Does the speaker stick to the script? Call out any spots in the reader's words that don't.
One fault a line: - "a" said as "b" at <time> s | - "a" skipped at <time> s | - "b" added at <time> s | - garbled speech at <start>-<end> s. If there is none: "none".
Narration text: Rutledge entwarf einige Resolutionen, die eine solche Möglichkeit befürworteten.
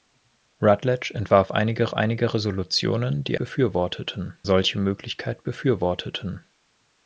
- "einige" added at 1.9 s
- "eine" said as "befürworteten" at 3.4 s